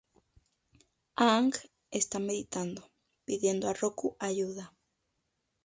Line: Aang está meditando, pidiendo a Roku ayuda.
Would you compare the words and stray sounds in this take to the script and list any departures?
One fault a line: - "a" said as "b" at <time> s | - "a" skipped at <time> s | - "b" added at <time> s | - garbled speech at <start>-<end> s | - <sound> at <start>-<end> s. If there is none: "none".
none